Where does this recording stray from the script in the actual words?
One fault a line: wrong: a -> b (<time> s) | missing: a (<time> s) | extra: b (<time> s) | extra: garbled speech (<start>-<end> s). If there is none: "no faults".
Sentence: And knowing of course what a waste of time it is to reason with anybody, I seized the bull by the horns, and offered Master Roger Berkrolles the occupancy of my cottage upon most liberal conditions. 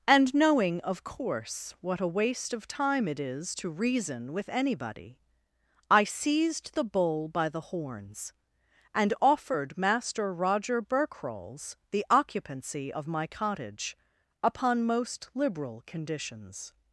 no faults